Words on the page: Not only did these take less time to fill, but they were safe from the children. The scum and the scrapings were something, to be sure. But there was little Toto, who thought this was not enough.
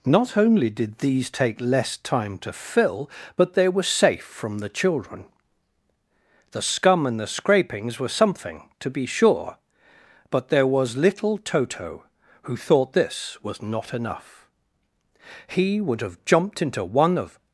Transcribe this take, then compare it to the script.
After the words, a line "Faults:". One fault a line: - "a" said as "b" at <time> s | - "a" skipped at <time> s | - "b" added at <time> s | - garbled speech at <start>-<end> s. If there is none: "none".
Not only did these take less time to fill, but they were safe from the children. The scum and the scrapings were something, to be sure. But there was little Toto, who thought this was not enough. He would have jumped into one of
Faults:
- "He would have jumped into one of" added at 15.5 s